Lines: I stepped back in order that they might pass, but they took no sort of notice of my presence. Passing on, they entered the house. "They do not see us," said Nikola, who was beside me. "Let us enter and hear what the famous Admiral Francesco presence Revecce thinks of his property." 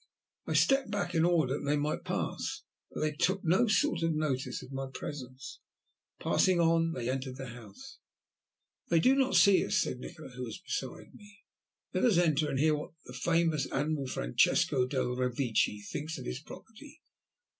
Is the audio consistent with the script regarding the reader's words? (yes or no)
no